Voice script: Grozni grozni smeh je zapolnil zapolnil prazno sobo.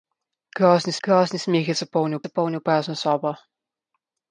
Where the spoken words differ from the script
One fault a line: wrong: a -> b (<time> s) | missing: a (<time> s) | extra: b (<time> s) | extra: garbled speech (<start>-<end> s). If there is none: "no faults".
no faults